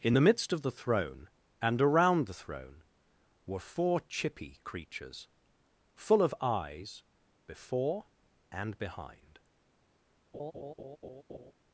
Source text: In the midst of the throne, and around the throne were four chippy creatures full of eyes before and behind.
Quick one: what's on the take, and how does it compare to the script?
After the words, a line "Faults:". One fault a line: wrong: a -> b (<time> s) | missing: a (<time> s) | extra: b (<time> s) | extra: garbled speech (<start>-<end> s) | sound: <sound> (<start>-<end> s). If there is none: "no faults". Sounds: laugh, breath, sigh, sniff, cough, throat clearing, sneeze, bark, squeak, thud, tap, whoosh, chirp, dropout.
In the midst of the throne, and around the throne were four chippy creatures full of eyes before and behind.
Faults:
sound: laugh (10.3-11.5 s)